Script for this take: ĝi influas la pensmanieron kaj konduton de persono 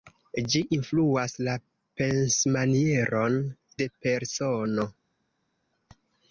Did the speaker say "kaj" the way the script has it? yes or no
no